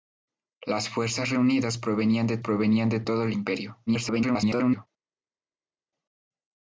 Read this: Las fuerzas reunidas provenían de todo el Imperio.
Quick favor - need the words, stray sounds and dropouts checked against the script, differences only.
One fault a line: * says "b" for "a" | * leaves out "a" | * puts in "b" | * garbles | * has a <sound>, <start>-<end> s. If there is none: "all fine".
* puts in "provenían de"
* garbles